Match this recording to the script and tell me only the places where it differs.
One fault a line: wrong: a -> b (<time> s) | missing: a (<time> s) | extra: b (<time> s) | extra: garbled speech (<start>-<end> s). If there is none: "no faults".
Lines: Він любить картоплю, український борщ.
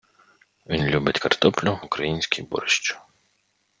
no faults